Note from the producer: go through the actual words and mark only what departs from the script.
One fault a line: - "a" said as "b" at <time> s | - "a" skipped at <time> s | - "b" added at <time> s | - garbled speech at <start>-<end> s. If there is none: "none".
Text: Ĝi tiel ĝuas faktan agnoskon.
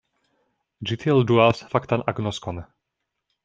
none